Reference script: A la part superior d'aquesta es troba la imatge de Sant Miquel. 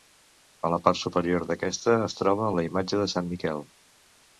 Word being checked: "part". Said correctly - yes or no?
yes